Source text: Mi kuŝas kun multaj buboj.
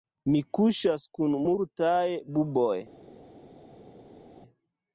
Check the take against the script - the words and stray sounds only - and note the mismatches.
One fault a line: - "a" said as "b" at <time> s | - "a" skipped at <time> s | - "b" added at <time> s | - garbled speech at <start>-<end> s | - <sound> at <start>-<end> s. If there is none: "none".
none